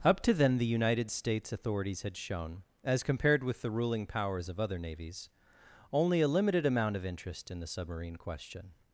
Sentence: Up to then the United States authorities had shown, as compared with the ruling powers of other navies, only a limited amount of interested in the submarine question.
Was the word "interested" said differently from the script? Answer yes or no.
yes